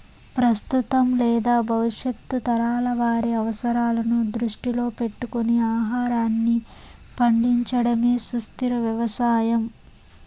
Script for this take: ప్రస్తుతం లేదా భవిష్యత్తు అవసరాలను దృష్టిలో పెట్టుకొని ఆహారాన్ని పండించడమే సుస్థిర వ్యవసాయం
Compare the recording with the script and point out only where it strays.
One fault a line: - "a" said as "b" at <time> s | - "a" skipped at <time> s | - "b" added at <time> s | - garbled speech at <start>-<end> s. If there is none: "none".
- "తరాల వారి" added at 2.4 s